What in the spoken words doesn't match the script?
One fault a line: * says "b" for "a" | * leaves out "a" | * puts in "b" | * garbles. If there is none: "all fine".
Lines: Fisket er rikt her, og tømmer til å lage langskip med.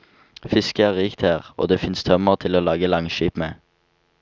* puts in "det fins"